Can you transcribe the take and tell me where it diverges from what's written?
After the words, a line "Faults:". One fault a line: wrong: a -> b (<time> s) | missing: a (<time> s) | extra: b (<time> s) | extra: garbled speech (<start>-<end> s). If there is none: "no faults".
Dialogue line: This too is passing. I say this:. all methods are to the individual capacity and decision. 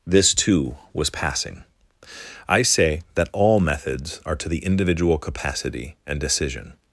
This too was passing. I say that:. all methods are to the individual capacity and decision.
Faults:
wrong: is -> was (0.9 s)
wrong: this -> that (3.1 s)